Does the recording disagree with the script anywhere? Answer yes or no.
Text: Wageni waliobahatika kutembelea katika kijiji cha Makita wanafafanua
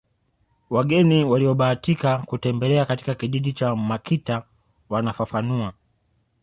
no